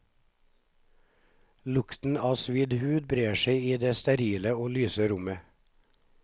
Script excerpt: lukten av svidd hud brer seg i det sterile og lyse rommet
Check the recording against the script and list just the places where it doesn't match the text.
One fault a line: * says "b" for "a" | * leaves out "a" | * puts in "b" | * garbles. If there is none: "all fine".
all fine